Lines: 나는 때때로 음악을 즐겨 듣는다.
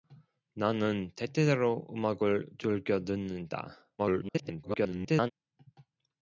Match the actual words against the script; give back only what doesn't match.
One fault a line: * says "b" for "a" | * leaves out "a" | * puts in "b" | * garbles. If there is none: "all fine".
* garbles